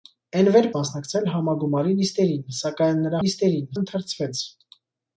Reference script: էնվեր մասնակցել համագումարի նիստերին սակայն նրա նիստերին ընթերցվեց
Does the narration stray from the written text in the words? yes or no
no